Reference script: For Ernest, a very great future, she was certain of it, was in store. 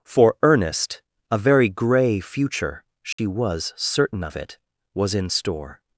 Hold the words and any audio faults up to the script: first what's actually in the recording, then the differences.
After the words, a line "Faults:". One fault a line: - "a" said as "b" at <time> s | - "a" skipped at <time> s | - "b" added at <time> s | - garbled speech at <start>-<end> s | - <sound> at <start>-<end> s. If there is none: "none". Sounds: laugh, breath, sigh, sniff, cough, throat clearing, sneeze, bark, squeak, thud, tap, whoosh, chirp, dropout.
For Ernest, a very grey future, she was certain of it, was in store.
Faults:
- "great" said as "grey" at 1.7 s
- dropout at 3.1-3.2 s